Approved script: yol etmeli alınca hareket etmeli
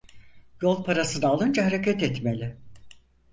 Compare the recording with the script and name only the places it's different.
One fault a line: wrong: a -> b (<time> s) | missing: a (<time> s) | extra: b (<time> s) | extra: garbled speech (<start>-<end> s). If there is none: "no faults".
wrong: etmeli -> parasını (0.8 s)